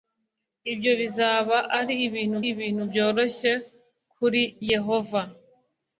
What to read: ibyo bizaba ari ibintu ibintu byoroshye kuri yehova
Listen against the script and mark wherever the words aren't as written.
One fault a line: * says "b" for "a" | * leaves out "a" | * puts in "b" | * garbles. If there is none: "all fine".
all fine